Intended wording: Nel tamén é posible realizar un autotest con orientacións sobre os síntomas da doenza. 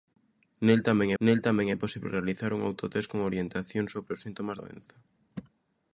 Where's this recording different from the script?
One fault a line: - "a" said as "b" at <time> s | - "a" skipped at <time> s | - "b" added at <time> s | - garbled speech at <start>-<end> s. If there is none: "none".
- "nel tamén" added at 1.2 s
- "da" skipped at 4.6 s